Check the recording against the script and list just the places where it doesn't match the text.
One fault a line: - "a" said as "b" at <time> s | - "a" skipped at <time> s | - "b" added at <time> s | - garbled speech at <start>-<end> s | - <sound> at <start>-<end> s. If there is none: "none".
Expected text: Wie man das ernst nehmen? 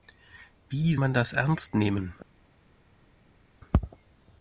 none